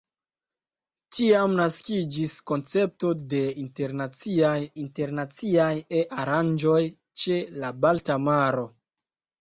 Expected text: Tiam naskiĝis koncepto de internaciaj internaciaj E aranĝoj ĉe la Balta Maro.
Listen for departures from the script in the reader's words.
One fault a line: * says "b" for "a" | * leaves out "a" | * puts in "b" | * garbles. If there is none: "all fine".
all fine